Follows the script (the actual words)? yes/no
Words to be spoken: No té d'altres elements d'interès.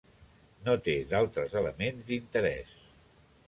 yes